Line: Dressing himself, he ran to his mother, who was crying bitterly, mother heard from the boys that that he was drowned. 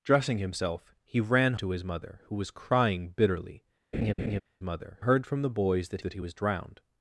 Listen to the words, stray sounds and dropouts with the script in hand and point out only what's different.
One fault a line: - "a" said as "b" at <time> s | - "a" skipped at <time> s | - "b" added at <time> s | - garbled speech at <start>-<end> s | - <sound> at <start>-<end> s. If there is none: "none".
- laugh at 3.9-4.4 s